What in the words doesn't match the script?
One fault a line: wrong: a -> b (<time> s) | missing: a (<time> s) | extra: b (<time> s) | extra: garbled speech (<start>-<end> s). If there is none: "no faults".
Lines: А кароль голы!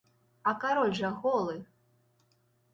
extra: жа (1.0 s)